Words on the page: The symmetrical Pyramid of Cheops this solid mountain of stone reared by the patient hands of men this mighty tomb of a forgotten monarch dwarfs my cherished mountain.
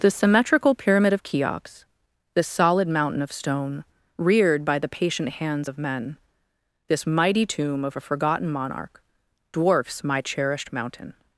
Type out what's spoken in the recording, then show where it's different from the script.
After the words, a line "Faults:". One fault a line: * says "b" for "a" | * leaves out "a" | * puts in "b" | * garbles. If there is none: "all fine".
The symmetrical Pyramid of Cheops this solid mountain of stone reared by the patient hands of men this mighty tomb of a forgotten monarch dwarfs my cherished mountain.
Faults:
all fine